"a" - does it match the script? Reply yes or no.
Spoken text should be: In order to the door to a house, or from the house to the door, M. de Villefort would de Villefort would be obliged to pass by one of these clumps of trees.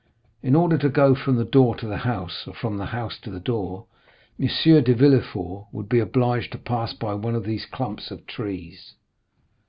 no